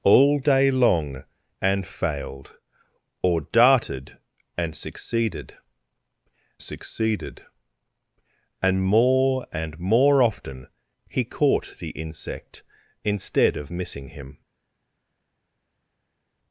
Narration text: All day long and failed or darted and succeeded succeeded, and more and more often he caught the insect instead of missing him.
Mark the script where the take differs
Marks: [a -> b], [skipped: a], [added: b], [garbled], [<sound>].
All day long and failed or darted and succeeded succeeded, and more and more often he caught the insect instead of missing him.